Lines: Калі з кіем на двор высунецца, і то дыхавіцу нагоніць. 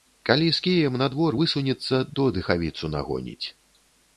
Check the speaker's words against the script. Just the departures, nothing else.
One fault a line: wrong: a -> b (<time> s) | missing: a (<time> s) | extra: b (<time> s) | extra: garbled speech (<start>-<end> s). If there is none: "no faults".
no faults